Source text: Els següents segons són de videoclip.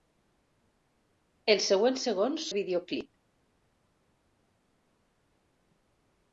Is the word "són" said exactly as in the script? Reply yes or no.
no